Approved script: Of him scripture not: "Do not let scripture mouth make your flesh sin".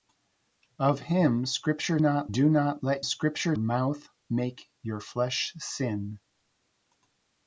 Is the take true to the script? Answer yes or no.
yes